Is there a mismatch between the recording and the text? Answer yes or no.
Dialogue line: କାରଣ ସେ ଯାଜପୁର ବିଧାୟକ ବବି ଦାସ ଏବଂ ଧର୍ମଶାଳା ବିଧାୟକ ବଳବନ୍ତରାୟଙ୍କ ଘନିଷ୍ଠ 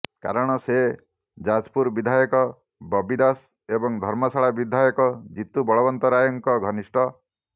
yes